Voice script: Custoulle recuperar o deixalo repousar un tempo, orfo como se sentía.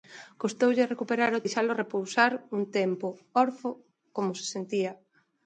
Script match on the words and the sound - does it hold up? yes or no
yes